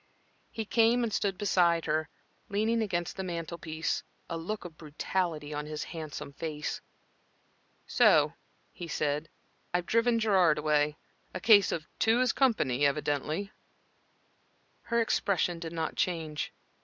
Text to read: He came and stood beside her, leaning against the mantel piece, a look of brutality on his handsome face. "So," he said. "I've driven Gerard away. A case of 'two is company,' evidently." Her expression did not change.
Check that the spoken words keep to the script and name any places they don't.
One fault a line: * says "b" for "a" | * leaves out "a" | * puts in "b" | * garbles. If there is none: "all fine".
all fine